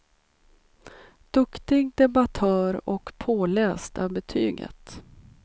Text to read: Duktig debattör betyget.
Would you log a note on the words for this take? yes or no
yes